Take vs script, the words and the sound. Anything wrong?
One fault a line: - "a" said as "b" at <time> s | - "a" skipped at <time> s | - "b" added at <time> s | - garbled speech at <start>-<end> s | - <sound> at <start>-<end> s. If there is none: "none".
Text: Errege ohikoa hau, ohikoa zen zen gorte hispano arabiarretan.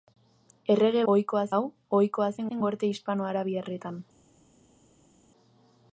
none